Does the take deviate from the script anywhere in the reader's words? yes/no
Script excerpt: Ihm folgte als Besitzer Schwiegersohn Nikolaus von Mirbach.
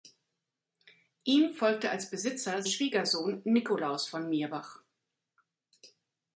no